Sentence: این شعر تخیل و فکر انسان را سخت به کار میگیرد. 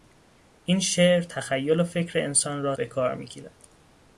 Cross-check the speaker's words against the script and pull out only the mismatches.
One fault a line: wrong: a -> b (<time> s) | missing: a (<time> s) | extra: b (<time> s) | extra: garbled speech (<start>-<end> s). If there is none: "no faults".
missing: سخت (2.8 s)